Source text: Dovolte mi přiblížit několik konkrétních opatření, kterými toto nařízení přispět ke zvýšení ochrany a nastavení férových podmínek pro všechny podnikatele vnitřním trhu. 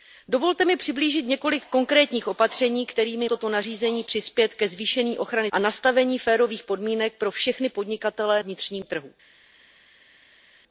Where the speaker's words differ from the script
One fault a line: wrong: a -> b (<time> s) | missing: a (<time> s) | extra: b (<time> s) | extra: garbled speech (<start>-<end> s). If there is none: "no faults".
no faults